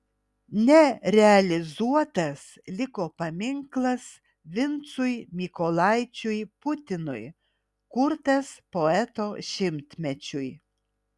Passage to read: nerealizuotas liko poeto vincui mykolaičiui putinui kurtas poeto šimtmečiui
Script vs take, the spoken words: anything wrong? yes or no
yes